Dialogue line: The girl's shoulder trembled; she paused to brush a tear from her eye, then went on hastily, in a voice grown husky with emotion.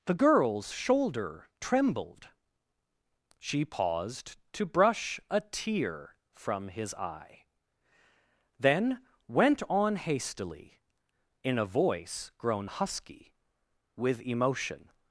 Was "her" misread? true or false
true